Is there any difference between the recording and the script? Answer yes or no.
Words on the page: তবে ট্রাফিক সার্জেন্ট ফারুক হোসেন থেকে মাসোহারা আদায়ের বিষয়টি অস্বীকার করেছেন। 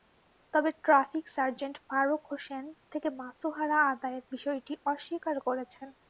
no